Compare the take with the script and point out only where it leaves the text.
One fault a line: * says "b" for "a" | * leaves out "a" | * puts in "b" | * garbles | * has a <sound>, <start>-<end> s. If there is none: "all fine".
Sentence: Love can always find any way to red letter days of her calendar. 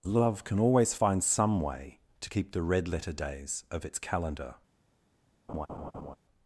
* says "some" for "any"
* puts in "keep the"
* says "its" for "her"
* has a laugh, 5.5-6.2 s